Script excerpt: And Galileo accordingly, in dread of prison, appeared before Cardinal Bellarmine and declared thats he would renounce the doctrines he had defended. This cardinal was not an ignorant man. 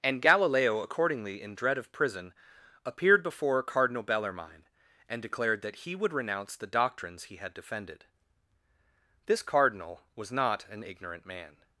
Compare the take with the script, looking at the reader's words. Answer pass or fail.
fail